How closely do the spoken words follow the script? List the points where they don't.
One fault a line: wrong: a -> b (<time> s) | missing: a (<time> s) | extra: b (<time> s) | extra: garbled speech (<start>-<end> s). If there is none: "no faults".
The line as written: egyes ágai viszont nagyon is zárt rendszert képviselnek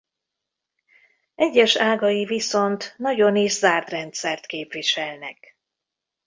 no faults